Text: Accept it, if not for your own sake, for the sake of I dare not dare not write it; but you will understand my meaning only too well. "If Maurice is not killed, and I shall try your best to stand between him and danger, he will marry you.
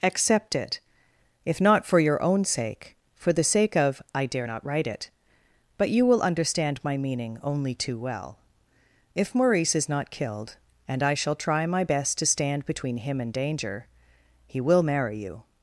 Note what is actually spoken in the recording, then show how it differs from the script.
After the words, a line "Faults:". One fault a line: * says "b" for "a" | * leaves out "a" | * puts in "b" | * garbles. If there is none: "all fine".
Accept it, if not for your own sake, for the sake of I dare not write it; but you will understand my meaning only too well. "If Maurice is not killed, and I shall try my best to stand between him and danger, he will marry you.
Faults:
* leaves out "dare not"
* says "my" for "your"